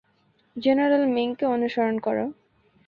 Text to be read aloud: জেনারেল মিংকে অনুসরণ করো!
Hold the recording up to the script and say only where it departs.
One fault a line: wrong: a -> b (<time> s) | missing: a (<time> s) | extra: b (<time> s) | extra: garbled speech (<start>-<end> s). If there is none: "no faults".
no faults